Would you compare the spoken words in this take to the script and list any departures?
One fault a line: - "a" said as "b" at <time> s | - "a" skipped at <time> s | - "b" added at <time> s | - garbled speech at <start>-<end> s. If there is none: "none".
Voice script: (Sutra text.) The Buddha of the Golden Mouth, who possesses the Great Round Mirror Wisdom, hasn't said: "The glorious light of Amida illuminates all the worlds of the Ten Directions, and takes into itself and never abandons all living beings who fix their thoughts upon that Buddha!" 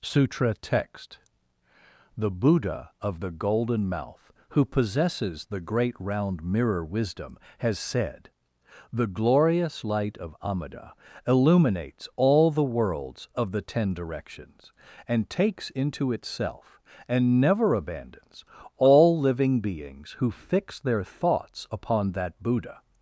- "hasn't" said as "has" at 7.6 s